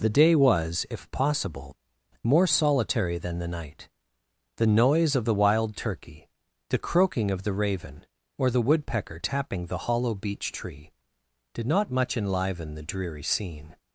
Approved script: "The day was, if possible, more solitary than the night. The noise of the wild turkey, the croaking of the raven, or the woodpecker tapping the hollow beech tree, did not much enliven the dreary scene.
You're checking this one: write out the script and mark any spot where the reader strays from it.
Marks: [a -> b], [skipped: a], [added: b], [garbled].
"The day was, if possible, more solitary than the night. The noise of the wild turkey, the croaking of the raven, or the woodpecker tapping the hollow beech tree, did not much enliven the dreary scene.